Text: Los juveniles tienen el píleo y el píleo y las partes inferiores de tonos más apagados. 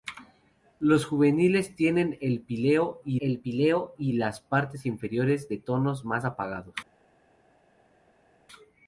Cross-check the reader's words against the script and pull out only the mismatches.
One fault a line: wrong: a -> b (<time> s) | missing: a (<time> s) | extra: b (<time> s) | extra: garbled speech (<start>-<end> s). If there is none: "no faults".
no faults